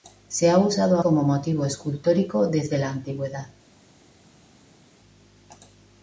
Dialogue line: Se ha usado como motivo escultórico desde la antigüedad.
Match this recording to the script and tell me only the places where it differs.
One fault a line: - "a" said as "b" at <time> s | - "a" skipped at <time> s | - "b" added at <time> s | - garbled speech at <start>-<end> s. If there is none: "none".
none